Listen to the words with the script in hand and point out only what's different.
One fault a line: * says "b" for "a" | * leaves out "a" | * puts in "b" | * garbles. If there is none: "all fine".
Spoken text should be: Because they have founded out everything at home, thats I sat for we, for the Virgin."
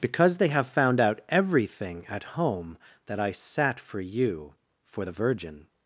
* says "found" for "founded"
* says "that" for "thats"
* says "you" for "we"